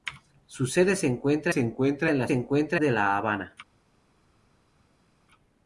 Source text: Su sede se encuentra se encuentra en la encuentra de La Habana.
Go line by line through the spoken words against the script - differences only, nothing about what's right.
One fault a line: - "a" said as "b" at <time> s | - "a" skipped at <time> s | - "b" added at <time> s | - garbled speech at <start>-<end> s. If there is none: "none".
none